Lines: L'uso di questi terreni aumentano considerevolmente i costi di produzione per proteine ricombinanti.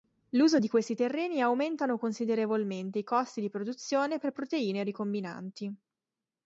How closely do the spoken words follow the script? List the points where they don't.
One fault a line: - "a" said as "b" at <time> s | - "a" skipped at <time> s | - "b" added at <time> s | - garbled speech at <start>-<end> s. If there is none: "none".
none